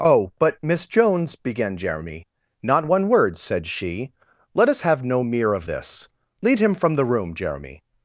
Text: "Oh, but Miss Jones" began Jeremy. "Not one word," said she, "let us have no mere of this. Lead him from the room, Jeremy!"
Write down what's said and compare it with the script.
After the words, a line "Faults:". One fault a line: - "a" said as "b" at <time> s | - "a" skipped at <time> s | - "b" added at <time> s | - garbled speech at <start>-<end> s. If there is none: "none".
"Oh, but Miss Jones" began Jeremy. "Not one word," said she, "let us have no mere of this. Lead him from the room, Jeremy!"
Faults:
none